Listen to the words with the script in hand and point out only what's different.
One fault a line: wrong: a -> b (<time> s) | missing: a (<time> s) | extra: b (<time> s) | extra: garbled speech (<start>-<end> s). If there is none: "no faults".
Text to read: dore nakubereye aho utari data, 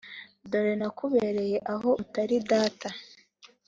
no faults